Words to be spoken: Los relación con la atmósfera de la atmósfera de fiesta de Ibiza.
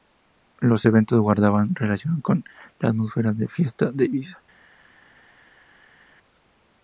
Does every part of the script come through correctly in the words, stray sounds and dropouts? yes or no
no